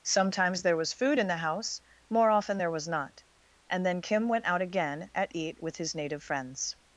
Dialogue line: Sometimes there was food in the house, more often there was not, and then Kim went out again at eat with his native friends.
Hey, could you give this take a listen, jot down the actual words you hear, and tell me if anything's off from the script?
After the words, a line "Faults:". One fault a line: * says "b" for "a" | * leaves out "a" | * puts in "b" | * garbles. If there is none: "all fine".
Sometimes there was food in the house, more often there was not, and then Kim went out again at eat with his native friends.
Faults:
all fine